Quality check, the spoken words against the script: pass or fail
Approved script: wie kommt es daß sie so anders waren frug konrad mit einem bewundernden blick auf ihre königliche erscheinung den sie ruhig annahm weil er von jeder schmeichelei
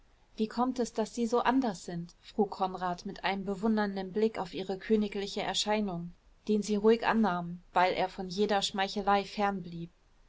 fail